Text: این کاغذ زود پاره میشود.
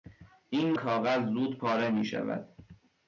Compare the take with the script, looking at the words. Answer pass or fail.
pass